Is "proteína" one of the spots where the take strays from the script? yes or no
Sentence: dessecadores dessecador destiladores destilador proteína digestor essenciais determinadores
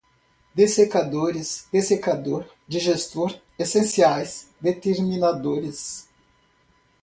yes